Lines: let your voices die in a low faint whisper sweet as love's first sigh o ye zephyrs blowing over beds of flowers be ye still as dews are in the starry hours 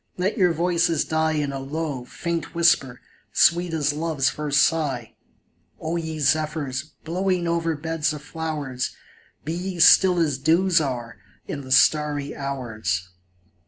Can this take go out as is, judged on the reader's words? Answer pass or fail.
pass